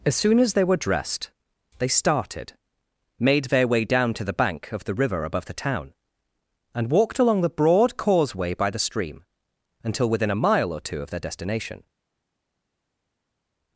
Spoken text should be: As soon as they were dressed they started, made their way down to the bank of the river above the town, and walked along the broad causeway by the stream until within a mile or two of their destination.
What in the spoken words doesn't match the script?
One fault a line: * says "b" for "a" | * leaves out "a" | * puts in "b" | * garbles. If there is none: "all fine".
all fine